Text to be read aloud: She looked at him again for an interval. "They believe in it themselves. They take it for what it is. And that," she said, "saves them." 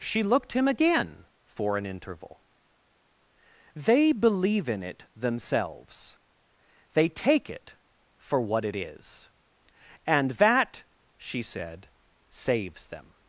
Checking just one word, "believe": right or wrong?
right